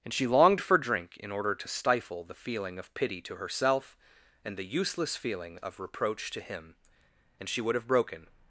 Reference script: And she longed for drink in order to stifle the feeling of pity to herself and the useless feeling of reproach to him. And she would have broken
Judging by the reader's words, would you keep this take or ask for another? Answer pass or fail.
pass